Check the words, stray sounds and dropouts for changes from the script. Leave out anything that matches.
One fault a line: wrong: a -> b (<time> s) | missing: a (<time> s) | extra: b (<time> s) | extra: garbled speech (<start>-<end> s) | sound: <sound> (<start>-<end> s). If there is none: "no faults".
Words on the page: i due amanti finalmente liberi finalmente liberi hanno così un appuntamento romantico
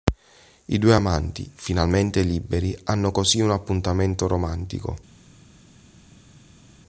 missing: finalmente liberi (2.7 s)